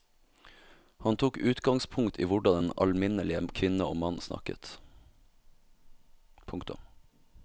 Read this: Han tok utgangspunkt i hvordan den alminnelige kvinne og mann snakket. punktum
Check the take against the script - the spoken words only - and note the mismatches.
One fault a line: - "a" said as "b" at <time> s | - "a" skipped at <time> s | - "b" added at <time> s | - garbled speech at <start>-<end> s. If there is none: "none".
none